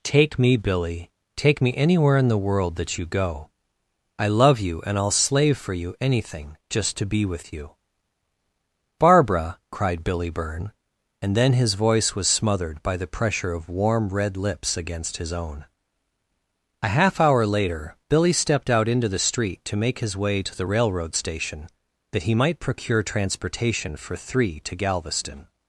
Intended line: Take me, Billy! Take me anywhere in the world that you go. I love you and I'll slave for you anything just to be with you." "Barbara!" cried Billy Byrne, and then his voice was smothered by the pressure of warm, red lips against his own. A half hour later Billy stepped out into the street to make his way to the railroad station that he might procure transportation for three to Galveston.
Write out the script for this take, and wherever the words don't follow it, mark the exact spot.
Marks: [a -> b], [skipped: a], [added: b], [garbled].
Take me, Billy! Take me anywhere in the world that you go. I love you and I'll slave for you anything just to be with you." "Barbara!" cried Billy Byrne, and then his voice was smothered by the pressure of warm, red lips against his own. A half hour later Billy stepped out into the street to make his way to the railroad station that he might procure transportation for three to Galveston.